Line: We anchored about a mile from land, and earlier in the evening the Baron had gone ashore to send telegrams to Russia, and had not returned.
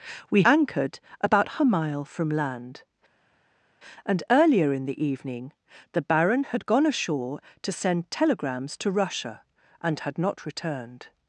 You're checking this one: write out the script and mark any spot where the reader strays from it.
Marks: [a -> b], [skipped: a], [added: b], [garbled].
We anchored about a mile from land, and earlier in the evening the Baron had gone ashore to send telegrams to Russia, and had not returned.